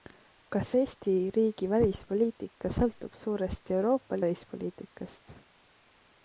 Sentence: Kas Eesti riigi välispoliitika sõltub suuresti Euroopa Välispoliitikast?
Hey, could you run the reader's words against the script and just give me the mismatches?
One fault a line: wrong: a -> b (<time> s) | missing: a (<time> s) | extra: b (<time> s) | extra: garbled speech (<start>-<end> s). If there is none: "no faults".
no faults